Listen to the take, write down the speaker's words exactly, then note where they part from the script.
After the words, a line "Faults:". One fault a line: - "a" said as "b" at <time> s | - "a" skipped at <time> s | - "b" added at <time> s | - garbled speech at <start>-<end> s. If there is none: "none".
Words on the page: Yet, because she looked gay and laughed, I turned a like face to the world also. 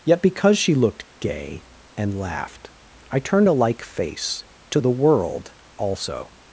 Yet, because she looked gay and laughed, I turned a like face to the world also.
Faults:
none